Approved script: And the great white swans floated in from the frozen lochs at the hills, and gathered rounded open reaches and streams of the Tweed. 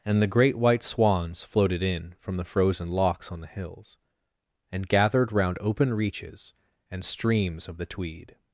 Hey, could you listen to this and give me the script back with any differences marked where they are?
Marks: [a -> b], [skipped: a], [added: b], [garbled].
And the great white swans floated in from the frozen lochs [at -> on] the hills, and gathered [rounded -> round] open reaches and streams of the Tweed.